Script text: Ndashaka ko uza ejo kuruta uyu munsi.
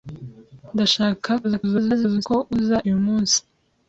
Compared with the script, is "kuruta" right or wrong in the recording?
wrong